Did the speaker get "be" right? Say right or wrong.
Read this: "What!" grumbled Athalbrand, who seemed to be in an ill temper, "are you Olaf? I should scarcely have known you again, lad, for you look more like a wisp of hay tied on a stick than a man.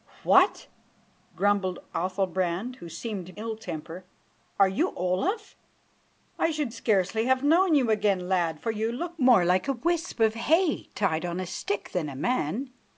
wrong